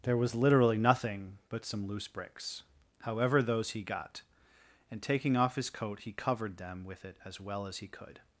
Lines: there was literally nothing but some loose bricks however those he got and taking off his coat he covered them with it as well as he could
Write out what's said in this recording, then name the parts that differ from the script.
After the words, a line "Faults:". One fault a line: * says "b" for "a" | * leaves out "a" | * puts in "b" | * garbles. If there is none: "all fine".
there was literally nothing but some loose bricks however those he got and taking off his coat he covered them with it as well as he could
Faults:
all fine